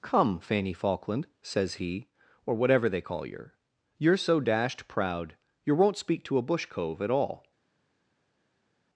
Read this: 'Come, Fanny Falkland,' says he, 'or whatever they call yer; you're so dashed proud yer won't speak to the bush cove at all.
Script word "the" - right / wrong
wrong